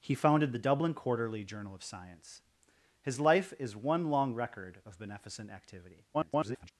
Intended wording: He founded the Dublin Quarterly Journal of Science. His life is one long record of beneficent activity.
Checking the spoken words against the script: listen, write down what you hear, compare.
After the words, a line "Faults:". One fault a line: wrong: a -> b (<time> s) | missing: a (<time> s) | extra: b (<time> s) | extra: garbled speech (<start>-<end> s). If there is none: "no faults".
He founded the Dublin Quarterly Journal of Science. His life is one long record of beneficent activity. [garbled]
Faults:
extra: garbled speech (6.1-6.7 s)